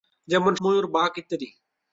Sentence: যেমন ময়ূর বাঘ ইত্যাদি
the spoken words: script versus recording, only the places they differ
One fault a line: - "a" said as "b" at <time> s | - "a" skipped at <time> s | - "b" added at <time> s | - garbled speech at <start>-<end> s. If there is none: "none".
none